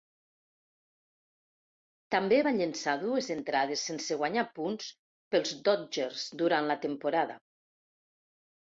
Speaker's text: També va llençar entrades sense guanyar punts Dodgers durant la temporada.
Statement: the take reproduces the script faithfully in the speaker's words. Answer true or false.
false